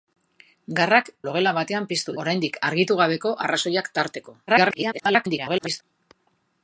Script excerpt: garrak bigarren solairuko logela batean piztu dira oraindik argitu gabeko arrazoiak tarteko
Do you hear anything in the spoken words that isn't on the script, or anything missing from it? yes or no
yes